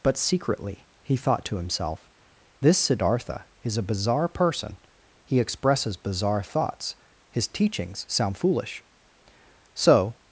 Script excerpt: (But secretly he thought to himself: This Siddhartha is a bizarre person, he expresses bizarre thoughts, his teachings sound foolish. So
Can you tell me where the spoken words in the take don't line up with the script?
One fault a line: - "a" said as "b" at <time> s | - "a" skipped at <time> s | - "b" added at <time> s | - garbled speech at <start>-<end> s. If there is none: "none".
none